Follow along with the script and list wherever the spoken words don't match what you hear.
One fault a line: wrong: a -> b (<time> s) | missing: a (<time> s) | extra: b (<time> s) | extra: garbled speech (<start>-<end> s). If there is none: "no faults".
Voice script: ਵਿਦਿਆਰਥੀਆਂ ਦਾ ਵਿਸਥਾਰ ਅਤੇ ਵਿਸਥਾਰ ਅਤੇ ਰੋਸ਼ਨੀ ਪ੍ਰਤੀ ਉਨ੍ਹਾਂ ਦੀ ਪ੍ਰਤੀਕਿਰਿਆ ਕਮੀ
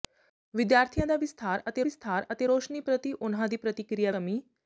no faults